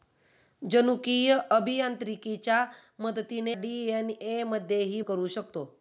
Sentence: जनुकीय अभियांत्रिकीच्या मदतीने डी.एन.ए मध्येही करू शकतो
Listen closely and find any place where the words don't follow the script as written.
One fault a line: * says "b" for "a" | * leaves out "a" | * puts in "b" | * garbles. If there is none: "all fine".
all fine